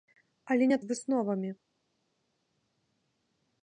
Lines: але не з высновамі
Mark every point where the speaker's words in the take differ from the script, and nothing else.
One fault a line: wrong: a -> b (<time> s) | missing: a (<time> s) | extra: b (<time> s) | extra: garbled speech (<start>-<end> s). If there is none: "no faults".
no faults